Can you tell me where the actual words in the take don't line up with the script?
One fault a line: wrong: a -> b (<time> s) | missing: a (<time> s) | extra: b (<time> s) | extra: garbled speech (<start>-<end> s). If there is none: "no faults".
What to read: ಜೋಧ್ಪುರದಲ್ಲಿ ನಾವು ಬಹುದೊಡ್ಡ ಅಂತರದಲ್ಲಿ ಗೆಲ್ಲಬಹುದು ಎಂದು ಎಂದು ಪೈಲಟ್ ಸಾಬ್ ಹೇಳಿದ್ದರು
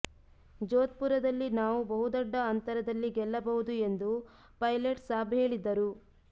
missing: ಎಂದು (4.1 s)